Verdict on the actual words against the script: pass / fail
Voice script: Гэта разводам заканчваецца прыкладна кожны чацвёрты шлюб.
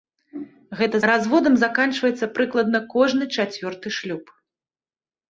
pass